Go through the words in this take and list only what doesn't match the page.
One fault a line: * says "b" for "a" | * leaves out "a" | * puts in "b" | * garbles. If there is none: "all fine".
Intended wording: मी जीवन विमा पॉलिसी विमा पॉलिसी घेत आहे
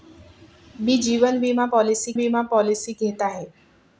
all fine